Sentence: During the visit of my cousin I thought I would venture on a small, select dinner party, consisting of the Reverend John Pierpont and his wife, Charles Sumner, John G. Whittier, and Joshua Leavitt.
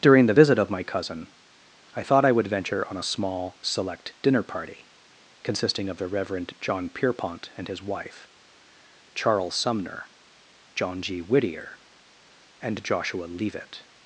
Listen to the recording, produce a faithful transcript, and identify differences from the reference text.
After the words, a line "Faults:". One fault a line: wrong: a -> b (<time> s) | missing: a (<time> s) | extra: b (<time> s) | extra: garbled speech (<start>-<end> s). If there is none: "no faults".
During the visit of my cousin I thought I would venture on a small, select dinner party, consisting of the Reverend John Pierpont and his wife, Charles Sumner, John G. Whittier, and Joshua Leavitt.
Faults:
no faults